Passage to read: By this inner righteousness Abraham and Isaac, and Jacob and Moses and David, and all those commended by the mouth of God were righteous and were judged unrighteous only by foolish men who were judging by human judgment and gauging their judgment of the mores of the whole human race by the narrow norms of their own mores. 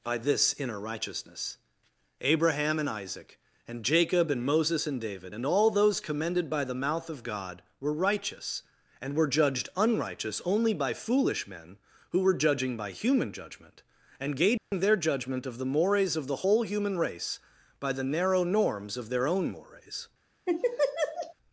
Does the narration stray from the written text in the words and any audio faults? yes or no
yes